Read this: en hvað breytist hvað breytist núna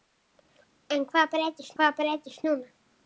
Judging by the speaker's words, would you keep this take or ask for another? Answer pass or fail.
pass